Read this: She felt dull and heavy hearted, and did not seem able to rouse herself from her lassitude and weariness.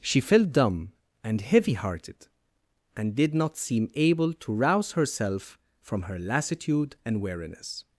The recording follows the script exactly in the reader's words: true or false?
false